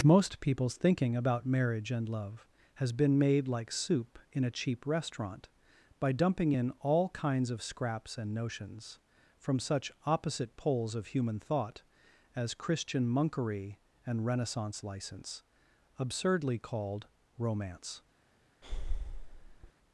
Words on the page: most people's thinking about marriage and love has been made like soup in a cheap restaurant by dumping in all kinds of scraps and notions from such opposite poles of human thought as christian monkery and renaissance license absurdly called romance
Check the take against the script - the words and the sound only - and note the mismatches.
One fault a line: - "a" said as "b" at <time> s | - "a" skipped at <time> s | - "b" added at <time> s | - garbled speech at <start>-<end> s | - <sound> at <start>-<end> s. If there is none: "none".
- breath at 18.6-19.7 s